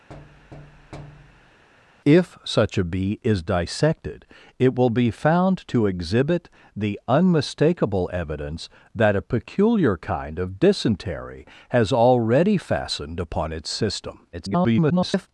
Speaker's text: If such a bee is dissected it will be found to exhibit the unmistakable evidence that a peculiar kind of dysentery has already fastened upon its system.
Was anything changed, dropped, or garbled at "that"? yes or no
no